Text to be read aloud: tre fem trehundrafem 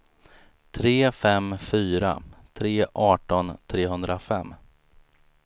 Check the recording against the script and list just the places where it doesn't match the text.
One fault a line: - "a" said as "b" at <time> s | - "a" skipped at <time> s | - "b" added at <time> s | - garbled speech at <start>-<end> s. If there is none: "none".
- "fyra tre arton" added at 1.6 s